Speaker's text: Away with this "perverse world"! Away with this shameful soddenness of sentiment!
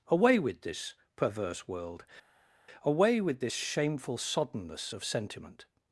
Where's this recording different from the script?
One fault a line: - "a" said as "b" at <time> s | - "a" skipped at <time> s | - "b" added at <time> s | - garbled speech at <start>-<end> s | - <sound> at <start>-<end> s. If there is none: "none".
none